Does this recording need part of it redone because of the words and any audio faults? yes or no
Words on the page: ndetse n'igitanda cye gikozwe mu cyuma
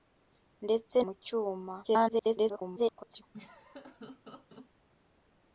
yes